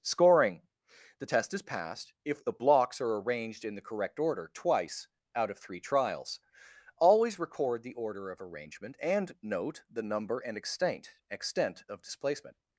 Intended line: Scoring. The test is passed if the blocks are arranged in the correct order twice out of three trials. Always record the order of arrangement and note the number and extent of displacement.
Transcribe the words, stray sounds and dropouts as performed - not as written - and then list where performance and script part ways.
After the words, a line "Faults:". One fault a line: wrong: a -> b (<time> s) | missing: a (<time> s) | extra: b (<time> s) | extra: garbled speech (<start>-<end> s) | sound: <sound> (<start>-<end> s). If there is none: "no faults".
Scoring. The test is passed if the blocks are arranged in the correct order twice out of three trials. Always record the order of arrangement and note the number and extent extent of displacement.
Faults:
extra: extent (11.3 s)